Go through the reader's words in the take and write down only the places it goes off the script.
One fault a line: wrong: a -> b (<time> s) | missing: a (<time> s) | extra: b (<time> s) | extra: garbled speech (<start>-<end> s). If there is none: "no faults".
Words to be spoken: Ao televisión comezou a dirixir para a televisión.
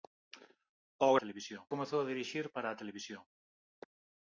no faults